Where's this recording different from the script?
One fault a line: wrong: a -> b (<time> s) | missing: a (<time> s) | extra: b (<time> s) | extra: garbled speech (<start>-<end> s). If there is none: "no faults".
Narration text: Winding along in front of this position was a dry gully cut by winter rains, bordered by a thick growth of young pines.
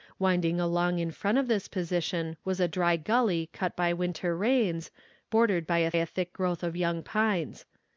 extra: a (5.9 s)